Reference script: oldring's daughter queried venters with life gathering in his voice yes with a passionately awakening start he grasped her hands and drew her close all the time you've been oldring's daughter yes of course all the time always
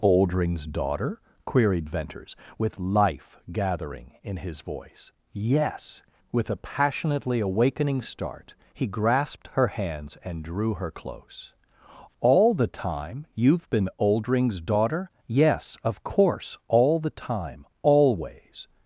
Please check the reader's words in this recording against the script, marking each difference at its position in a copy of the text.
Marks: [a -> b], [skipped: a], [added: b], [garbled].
oldring's daughter queried venters with life gathering in his voice yes with a passionately awakening start he grasped her hands and drew her close all the time you've been oldring's daughter yes of course all the time always